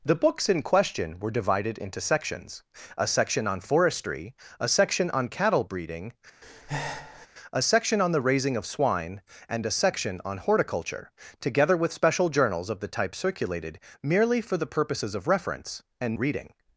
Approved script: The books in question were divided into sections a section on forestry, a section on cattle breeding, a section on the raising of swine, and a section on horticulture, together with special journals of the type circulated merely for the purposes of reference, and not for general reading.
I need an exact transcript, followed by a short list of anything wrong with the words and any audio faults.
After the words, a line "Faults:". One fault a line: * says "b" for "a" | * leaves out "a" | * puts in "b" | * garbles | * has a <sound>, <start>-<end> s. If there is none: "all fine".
The books in question were divided into sections a section on forestry, a section on cattle breeding, a section on the raising of swine, and a section on horticulture, together with special journals of the type circulated merely for the purposes of reference, and reading.
Faults:
* has a breath, 6.4-7.3 s
* leaves out "not for general"